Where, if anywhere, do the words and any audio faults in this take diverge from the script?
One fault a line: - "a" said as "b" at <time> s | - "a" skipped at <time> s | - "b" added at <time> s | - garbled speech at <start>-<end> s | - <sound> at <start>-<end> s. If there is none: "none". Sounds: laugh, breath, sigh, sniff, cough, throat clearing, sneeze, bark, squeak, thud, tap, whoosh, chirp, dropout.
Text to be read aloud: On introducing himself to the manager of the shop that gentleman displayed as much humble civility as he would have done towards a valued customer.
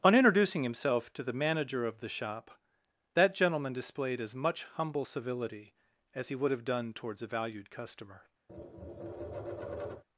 - tap at 8.5-10.0 s